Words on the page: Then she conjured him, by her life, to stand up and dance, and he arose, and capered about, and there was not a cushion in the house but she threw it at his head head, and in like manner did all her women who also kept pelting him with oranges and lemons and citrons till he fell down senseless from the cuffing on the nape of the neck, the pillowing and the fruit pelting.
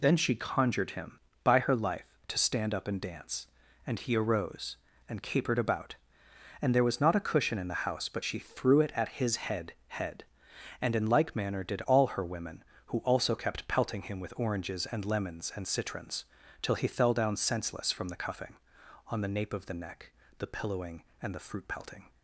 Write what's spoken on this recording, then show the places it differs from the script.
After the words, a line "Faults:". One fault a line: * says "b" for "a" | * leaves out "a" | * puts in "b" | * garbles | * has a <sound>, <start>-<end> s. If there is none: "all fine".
Then she conjured him, by her life, to stand up and dance, and he arose, and capered about, and there was not a cushion in the house but she threw it at his head head, and in like manner did all her women who also kept pelting him with oranges and lemons and citrons till he fell down senseless from the cuffing on the nape of the neck, the pillowing and the fruit pelting.
Faults:
all fine